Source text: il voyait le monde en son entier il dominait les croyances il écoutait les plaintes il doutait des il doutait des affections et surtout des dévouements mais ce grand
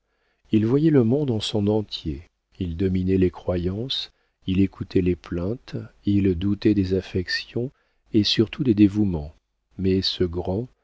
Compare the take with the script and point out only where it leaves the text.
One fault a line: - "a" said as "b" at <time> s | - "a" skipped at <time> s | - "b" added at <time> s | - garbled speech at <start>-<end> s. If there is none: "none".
- "il doutait des" skipped at 7.0 s